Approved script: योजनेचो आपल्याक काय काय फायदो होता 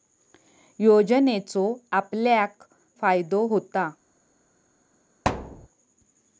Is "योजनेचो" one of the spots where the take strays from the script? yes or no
no